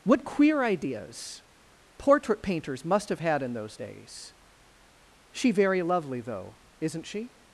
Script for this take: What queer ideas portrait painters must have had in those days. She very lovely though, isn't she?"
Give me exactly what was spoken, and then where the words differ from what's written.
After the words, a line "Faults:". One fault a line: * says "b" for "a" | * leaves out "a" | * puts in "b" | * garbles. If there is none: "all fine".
What queer ideas portrait painters must have had in those days. She very lovely though, isn't she?"
Faults:
all fine